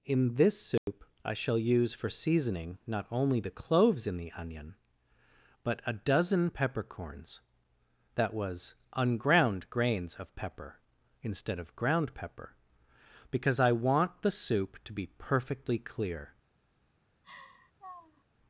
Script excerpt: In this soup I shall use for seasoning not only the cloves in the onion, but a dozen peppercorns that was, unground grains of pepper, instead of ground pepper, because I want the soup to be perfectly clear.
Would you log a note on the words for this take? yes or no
no